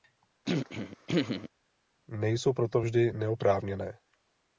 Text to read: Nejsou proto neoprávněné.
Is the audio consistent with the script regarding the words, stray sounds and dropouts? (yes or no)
no